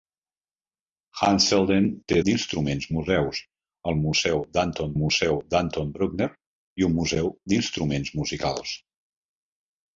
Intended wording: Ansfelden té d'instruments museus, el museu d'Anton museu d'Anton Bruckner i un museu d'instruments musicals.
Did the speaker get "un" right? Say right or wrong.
right